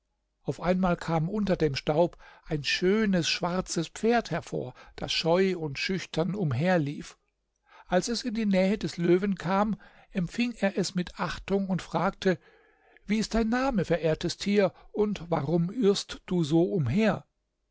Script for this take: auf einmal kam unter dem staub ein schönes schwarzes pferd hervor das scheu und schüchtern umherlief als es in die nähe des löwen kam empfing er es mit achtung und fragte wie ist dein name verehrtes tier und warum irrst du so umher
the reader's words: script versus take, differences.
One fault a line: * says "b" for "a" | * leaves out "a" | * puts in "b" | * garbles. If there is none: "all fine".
all fine